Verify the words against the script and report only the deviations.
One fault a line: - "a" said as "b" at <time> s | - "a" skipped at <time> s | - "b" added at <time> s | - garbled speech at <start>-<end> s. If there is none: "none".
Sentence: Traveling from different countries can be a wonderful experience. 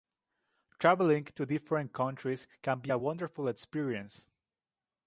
- "from" said as "to" at 1.2 s